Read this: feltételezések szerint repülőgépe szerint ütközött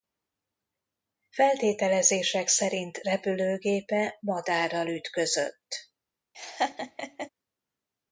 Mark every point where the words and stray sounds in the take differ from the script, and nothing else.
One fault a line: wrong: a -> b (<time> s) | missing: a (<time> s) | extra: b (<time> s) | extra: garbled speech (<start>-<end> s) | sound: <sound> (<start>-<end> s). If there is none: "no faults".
wrong: szerint -> madárral (4.2 s)
sound: laugh (6.3-7.3 s)